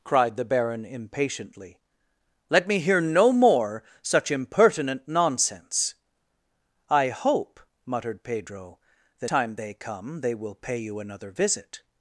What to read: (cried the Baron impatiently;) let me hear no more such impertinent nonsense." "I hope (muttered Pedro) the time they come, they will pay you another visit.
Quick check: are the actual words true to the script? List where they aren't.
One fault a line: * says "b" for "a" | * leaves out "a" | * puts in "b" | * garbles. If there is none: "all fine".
all fine